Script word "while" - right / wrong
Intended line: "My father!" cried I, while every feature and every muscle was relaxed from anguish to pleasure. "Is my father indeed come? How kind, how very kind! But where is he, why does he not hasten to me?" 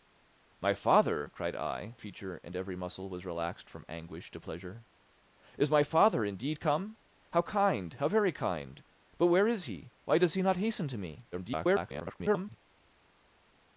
wrong